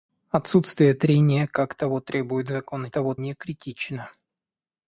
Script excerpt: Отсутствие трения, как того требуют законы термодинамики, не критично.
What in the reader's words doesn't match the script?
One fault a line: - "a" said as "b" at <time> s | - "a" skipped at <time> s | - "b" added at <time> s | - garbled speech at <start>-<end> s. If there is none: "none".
- "термодинамики" said as "того" at 2.9 s